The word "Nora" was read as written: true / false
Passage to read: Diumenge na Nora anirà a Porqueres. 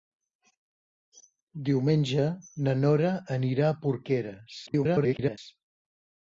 true